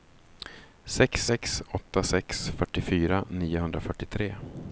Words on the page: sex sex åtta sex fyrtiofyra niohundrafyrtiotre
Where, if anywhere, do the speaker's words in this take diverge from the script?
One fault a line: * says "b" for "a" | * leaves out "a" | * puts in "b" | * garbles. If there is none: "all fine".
all fine